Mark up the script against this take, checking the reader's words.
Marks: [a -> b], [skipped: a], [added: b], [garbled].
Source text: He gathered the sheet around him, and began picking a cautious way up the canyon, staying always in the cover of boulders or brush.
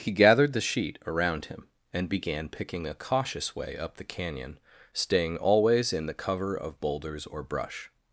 He gathered the sheet around him, and began picking a cautious way up the canyon, staying always in the cover of boulders or brush.